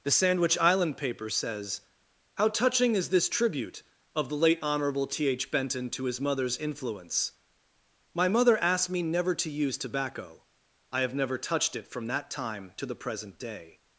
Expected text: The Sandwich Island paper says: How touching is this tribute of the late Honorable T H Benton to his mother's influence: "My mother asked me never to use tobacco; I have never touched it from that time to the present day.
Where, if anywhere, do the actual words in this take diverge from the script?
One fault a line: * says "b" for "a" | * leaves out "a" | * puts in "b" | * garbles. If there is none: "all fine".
all fine